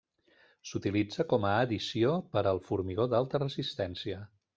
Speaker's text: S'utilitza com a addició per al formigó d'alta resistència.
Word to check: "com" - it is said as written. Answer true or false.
true